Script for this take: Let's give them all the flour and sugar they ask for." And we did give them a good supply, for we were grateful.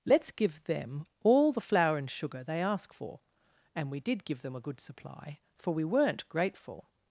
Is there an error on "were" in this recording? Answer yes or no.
yes